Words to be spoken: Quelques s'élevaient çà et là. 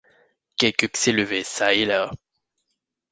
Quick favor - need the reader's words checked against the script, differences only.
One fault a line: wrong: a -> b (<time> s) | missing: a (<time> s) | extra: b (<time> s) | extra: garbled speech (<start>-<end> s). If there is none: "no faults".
no faults